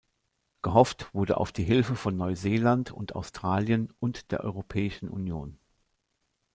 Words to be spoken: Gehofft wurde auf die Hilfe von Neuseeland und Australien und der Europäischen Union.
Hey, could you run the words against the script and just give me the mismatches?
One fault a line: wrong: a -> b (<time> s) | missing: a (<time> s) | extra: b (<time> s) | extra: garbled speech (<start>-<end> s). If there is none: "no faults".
no faults